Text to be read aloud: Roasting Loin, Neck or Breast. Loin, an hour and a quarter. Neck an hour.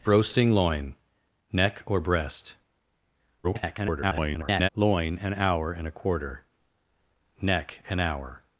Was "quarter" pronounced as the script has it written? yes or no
yes